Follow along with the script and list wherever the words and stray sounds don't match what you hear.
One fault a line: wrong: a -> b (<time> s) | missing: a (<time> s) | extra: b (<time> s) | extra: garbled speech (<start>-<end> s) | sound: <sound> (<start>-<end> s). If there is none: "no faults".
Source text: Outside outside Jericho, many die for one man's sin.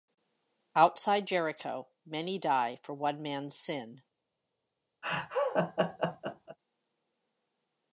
missing: outside (1.3 s)
sound: laugh (5.0-6.6 s)